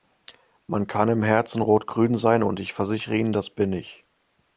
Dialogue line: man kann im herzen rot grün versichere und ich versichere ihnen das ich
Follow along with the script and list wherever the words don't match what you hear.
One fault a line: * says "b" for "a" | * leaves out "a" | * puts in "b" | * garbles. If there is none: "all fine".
* says "sein" for "versichere"
* puts in "bin"